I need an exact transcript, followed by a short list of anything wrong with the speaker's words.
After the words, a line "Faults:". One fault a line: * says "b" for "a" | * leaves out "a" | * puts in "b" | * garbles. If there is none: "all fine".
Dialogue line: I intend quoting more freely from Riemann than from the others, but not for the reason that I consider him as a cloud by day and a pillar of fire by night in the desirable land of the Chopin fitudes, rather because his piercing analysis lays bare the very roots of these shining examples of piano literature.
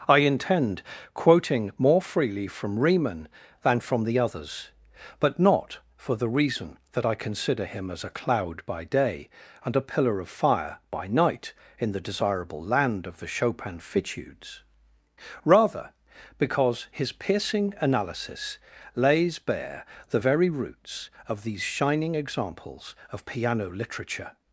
I intend quoting more freely from Riemann than from the others, but not for the reason that I consider him as a cloud by day and a pillar of fire by night in the desirable land of the Chopin fitudes, rather because his piercing analysis lays bare the very roots of these shining examples of piano literature.
Faults:
all fine